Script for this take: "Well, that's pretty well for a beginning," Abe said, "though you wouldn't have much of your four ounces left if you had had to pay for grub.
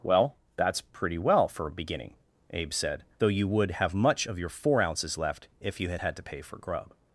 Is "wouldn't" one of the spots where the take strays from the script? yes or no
yes